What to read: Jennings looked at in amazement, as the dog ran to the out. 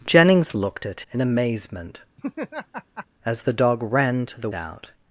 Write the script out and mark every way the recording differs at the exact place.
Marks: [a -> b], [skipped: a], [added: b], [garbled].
Jennings looked at in amazement, as the dog ran to the out.